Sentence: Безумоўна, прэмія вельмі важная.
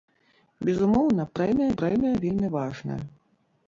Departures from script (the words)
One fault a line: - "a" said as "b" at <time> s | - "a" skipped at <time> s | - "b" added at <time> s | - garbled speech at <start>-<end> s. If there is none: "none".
- "прэмія" added at 1.8 s